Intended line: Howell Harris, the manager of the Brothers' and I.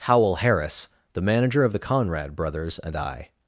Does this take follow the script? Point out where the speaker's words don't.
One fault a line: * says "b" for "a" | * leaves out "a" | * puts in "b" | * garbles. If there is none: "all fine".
* puts in "Conrad"